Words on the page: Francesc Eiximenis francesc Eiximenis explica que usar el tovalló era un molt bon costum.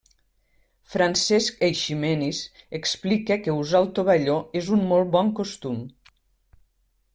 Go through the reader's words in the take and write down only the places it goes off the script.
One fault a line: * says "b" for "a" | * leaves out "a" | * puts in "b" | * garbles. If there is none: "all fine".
* leaves out "francesc Eiximenis"
* says "és" for "era"